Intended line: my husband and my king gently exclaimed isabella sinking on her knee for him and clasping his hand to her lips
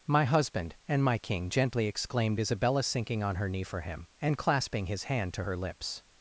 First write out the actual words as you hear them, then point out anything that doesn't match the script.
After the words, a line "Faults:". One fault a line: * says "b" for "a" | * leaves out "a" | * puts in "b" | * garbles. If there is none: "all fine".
my husband and my king gently exclaimed isabella sinking on her knee for him and clasping his hand to her lips
Faults:
all fine